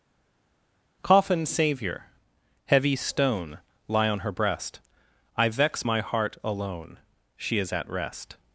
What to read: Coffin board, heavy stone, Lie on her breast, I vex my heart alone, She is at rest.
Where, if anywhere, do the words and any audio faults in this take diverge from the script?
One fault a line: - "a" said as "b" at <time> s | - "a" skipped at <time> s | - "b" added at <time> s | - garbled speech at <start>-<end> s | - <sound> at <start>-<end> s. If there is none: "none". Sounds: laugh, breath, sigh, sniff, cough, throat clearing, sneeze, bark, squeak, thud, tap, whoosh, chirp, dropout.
- "board" said as "savior" at 1.5 s